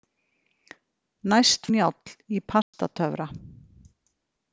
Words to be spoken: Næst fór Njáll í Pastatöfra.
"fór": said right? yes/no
no